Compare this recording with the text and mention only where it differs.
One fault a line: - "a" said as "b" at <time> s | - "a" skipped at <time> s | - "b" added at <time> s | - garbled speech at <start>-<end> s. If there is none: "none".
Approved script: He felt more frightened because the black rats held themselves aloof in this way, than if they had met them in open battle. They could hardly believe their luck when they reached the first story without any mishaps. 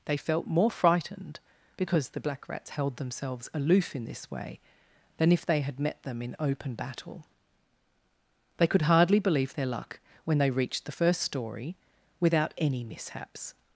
- "He" said as "They" at 0.1 s